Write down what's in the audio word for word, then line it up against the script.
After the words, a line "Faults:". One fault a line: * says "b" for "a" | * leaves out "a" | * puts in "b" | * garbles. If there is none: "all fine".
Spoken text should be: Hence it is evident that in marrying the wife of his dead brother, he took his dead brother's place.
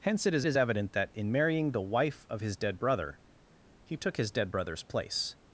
Hence it is is evident that in marrying the wife of his dead brother, he took his dead brother's place.
Faults:
* puts in "is"